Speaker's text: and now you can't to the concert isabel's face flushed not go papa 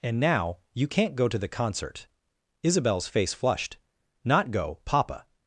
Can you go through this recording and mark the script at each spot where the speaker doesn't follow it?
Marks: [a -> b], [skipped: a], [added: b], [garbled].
and now you can't [added: go] to the concert isabel's face flushed not go papa